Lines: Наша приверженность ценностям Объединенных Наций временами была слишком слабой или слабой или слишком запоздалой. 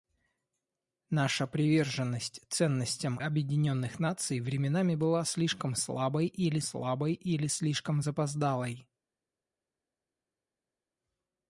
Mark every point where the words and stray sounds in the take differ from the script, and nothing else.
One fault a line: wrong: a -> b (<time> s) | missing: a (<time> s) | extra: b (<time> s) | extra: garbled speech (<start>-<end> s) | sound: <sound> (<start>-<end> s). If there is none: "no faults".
no faults